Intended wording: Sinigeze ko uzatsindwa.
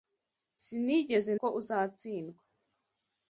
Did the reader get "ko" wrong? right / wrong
right